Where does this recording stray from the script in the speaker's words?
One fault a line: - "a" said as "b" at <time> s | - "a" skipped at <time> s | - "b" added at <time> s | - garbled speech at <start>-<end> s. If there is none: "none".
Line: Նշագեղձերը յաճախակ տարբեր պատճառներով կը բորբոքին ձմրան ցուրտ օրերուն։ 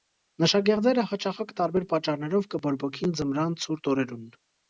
none